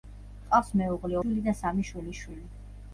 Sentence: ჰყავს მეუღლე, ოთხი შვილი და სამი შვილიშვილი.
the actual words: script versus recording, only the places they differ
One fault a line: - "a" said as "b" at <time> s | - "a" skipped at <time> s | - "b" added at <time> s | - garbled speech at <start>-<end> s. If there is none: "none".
- "ოთხი" skipped at 1.2 s